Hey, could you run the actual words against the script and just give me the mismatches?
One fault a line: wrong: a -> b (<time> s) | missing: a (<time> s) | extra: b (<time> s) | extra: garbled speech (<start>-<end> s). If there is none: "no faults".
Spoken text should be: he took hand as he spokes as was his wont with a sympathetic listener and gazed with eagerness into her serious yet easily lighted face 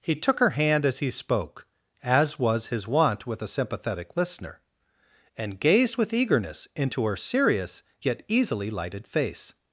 extra: her (0.4 s)
wrong: spokes -> spoke (1.1 s)